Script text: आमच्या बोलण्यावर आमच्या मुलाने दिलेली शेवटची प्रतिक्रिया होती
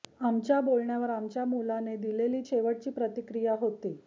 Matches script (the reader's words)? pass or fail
pass